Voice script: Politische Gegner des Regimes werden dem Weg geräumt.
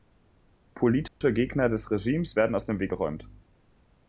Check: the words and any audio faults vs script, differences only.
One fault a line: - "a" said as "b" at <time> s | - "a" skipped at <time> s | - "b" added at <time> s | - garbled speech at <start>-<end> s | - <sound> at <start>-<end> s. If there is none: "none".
- dropout at 1.1-1.2 s
- "aus" added at 2.6 s